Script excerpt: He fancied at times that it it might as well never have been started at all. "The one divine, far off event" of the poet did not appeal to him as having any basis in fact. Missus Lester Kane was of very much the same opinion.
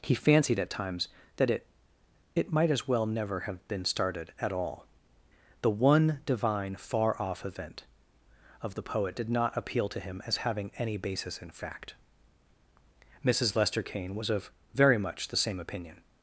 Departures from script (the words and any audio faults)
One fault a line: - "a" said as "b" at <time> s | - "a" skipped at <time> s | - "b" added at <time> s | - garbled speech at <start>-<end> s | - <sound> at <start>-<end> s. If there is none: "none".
none